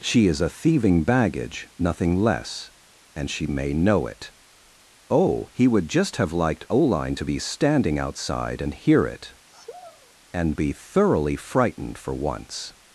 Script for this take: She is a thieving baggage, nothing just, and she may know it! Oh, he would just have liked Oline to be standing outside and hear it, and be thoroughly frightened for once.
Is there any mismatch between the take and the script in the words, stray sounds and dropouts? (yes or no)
yes